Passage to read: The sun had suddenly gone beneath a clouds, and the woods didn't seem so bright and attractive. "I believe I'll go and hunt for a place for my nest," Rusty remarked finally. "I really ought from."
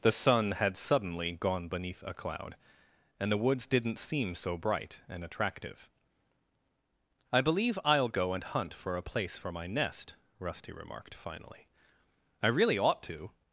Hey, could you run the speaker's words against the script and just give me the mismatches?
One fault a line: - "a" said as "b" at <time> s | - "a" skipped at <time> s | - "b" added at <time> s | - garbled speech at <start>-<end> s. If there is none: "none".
- "clouds" said as "cloud" at 2.1 s
- "from" said as "to" at 13.0 s